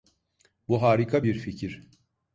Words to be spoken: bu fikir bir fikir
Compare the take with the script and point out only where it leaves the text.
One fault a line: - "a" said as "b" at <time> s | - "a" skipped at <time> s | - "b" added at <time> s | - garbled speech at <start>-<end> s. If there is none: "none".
- "fikir" said as "harika" at 0.8 s